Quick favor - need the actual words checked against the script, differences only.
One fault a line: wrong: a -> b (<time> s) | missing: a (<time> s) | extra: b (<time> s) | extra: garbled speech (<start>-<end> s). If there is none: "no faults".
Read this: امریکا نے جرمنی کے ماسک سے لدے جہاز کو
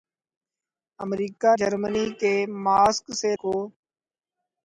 missing: نے (1.5 s)
missing: لدے جہاز (3.3 s)